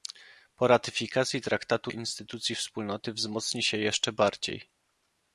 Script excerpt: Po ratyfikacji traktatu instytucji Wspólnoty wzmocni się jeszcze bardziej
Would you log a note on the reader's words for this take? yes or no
no